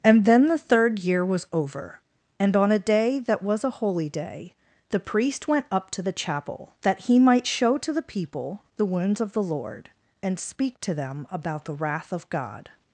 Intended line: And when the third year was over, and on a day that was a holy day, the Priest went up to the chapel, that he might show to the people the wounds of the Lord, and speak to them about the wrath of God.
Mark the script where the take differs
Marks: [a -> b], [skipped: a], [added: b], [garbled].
And [when -> then] the third year was over, and on a day that was a holy day, the Priest went up to the chapel, that he might show to the people the wounds of the Lord, and speak to them about the wrath of God.